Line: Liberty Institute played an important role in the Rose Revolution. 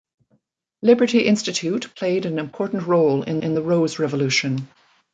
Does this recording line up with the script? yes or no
no